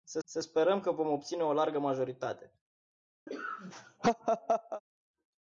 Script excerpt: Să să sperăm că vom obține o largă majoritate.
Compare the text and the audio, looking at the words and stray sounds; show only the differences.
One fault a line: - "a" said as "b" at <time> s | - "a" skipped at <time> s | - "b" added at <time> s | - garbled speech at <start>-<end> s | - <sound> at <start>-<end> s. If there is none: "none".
- laugh at 3.3-4.8 s